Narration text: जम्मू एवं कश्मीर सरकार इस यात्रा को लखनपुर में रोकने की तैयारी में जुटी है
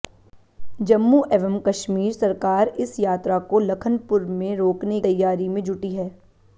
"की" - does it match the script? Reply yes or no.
no